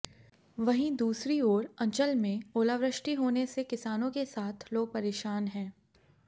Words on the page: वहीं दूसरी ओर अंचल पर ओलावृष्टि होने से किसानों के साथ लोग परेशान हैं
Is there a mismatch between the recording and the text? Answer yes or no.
yes